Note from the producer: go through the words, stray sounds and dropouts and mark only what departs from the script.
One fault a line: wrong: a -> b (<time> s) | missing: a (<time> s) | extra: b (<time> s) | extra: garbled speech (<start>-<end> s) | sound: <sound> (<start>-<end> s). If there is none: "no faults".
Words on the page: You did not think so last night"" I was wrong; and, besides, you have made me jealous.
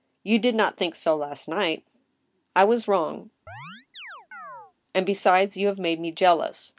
sound: chirp (3.5-4.7 s)